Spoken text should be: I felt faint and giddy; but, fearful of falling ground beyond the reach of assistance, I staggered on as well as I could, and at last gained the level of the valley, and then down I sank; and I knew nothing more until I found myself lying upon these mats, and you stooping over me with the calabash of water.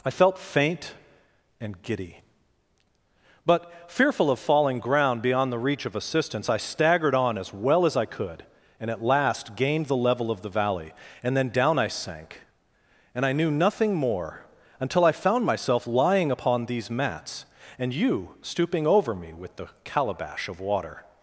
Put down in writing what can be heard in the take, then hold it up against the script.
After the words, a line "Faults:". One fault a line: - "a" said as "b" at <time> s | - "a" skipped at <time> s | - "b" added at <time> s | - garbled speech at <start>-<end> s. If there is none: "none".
I felt faint and giddy; but, fearful of falling ground beyond the reach of assistance, I staggered on as well as I could, and at last gained the level of the valley, and then down I sank; and I knew nothing more until I found myself lying upon these mats, and you stooping over me with the calabash of water.
Faults:
none